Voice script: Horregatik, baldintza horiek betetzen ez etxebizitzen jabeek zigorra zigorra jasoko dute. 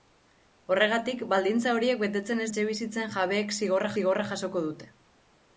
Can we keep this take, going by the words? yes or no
yes